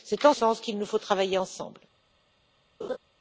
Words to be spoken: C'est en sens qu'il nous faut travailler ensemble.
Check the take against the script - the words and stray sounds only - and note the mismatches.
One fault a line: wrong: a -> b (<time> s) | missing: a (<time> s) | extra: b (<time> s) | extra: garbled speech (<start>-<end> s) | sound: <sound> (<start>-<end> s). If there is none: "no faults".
sound: laugh (2.8-3.0 s)